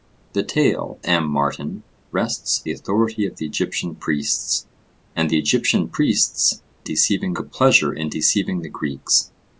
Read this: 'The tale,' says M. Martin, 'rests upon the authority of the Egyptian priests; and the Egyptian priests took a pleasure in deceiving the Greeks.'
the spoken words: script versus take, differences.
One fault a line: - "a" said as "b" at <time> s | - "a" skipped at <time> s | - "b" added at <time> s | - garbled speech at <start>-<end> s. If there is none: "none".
- "says" skipped at 1.0 s
- "upon" skipped at 2.6 s
- "took" said as "deceiving" at 6.8 s